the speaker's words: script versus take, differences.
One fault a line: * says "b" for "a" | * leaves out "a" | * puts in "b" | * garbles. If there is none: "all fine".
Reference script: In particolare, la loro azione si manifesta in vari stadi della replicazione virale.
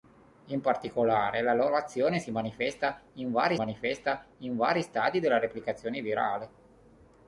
* puts in "manifesta in vari"